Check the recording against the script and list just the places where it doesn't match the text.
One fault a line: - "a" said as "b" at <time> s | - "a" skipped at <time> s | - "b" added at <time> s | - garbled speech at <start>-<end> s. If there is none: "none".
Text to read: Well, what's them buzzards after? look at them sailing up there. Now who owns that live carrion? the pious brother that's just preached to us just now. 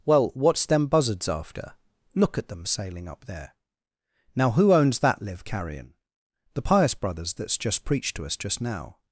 - "brother" said as "brothers" at 6.9 s